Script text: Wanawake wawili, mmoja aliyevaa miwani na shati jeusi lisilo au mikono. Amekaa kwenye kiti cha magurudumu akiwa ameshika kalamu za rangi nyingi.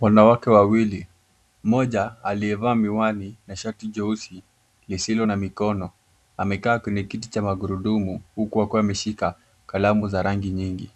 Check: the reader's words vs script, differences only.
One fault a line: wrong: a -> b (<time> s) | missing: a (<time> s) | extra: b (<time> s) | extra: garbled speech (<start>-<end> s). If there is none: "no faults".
wrong: au -> na (5.2 s)
extra: huku (8.3 s)